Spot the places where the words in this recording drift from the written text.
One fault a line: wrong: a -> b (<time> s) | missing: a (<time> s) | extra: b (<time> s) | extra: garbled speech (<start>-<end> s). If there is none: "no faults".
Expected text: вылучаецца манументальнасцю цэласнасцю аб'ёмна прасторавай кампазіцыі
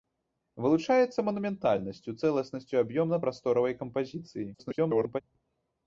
extra: garbled speech (4.5-5.2 s)